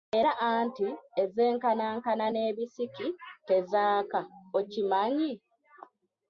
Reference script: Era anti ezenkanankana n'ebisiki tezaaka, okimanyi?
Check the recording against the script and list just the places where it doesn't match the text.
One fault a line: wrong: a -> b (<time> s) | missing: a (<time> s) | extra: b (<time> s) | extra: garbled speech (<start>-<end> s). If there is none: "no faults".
no faults